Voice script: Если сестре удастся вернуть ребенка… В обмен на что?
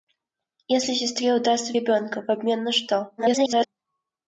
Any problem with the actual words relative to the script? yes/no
yes